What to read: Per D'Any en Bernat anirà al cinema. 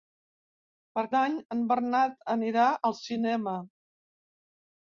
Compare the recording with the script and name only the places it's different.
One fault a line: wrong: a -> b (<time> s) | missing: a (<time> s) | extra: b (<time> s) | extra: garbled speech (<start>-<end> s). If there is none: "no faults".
no faults